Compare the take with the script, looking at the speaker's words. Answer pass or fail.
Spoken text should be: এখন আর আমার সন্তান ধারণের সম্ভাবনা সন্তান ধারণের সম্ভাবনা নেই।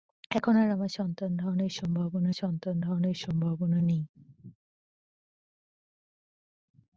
pass